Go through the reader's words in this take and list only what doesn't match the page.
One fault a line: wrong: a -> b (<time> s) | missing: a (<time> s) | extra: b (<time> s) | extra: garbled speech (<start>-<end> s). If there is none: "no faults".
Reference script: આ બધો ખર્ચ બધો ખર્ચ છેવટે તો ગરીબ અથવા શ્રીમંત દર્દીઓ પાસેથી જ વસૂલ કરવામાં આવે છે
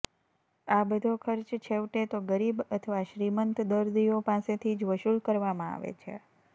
missing: બધો ખર્ચ (1.6 s)